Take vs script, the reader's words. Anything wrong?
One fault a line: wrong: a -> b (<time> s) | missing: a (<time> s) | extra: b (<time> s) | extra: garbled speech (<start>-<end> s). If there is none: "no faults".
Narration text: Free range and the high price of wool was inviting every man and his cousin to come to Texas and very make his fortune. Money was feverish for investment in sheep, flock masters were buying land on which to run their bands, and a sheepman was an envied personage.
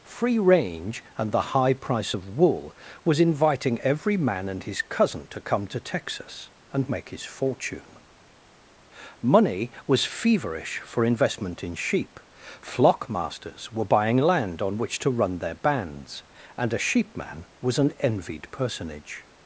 missing: very (6.9 s)